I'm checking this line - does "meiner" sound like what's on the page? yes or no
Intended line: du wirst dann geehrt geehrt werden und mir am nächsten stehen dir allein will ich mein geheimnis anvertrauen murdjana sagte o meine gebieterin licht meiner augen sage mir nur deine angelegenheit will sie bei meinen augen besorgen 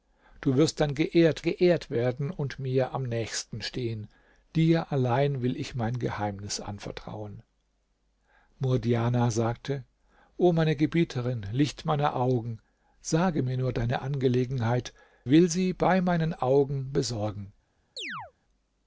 yes